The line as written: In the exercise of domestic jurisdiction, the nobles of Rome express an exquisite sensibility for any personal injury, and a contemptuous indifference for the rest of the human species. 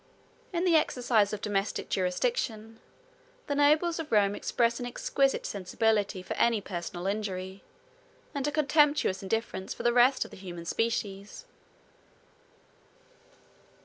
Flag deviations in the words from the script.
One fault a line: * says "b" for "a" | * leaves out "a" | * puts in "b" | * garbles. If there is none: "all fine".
all fine